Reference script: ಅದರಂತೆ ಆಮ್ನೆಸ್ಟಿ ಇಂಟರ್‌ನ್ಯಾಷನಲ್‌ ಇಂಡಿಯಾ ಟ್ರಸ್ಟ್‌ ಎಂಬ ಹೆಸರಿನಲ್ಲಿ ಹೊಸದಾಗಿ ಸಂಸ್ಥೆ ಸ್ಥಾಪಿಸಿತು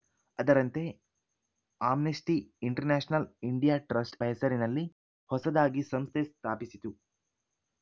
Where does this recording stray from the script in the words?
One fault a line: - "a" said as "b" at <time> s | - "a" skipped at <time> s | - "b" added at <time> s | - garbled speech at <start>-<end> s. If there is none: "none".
- "ಎಂಬ" skipped at 4.2 s